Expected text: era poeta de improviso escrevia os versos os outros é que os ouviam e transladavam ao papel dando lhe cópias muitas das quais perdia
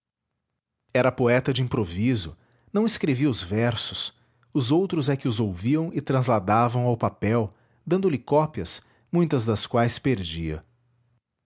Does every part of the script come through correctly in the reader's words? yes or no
no